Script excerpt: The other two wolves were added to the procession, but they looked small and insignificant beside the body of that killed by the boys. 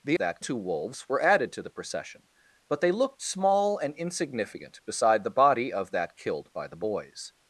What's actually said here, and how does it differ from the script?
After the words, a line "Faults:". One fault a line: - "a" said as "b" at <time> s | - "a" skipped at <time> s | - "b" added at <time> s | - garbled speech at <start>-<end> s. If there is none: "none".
The that two wolves were added to the procession, but they looked small and insignificant beside the body of that killed by the boys.
Faults:
- "other" said as "that" at 0.2 s